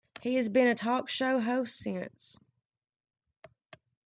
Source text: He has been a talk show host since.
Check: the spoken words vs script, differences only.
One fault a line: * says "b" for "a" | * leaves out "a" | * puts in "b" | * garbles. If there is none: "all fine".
all fine